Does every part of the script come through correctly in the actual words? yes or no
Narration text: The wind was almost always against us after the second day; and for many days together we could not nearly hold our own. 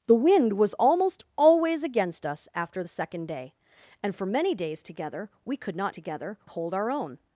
no